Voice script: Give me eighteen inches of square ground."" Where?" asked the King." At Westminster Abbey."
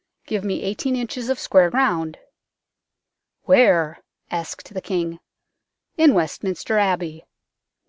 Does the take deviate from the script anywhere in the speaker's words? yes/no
yes